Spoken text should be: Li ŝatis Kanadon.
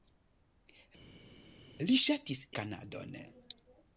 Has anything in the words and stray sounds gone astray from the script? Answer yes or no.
no